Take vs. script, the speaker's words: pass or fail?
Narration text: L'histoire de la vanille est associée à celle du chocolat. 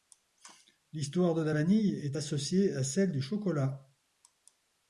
pass